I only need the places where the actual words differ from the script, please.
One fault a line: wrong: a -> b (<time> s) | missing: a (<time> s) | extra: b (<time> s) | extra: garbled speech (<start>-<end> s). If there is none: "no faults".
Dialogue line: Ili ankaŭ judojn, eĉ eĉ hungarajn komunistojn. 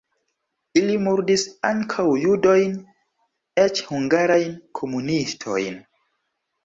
extra: murdis (1.1 s)
missing: eĉ (3.8 s)